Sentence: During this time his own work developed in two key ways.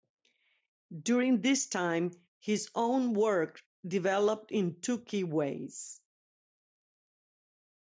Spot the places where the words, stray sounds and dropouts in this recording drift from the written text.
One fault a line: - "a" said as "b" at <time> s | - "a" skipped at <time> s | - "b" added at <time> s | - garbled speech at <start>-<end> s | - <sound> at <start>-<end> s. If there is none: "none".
none